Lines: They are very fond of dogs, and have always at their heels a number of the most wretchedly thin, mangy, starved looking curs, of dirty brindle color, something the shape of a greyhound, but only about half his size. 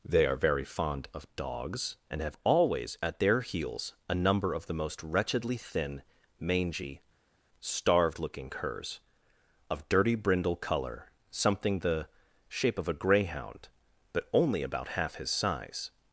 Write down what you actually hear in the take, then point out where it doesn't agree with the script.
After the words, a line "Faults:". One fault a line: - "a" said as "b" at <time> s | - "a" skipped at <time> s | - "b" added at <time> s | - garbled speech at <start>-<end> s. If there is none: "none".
They are very fond of dogs, and have always at their heels a number of the most wretchedly thin, mangy, starved looking curs, of dirty brindle color, something the shape of a greyhound, but only about half his size.
Faults:
none